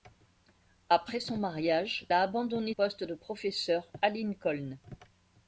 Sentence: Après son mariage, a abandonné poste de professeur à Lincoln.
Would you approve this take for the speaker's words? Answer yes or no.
yes